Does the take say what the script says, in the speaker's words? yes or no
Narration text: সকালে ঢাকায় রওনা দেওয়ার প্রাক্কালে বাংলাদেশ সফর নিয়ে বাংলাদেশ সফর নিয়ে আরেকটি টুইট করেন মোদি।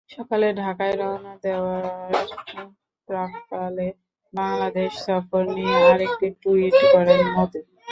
no